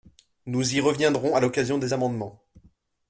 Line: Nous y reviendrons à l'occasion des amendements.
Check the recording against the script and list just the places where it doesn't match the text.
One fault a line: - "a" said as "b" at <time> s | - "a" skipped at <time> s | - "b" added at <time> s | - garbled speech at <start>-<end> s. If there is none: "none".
none